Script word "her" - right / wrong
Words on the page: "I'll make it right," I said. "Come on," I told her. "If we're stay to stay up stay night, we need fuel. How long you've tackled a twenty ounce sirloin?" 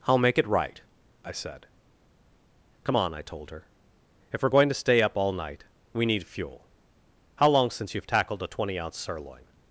right